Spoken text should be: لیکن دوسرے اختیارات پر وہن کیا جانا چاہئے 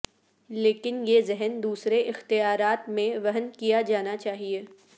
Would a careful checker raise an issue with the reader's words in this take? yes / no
yes